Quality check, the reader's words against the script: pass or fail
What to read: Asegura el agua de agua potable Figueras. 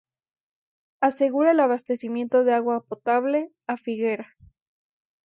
fail